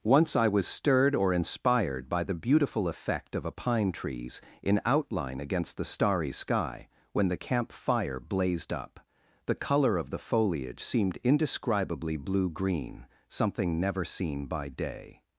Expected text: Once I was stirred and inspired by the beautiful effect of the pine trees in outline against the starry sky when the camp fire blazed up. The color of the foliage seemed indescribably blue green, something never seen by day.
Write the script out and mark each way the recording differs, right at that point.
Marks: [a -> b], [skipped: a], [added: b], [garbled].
Once I was stirred [and -> or] inspired by the beautiful effect of [the -> a] pine trees in outline against the starry sky when the camp fire blazed up. The color of the foliage seemed indescribably blue green, something never seen by day.